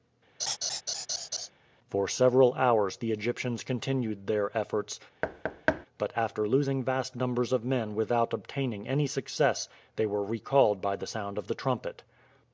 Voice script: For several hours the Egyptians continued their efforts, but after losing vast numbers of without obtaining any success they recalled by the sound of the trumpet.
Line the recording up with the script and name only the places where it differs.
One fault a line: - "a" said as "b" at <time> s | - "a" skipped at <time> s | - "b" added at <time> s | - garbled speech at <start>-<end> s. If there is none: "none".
- "men" added at 7.6 s
- "were" added at 10.0 s